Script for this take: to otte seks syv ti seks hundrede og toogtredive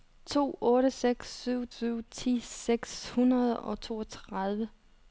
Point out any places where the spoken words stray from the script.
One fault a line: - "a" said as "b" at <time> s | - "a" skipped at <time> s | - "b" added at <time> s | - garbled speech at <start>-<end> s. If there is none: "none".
- "syv" added at 1.8 s